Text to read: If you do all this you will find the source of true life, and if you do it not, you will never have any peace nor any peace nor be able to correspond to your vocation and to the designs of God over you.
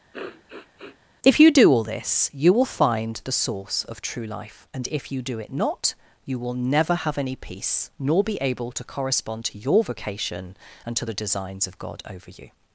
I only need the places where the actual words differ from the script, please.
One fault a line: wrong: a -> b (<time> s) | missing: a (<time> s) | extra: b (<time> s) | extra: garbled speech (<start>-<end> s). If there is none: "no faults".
missing: any peace nor (8.2 s)